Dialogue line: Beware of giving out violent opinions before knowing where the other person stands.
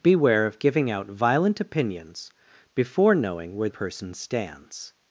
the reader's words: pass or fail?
fail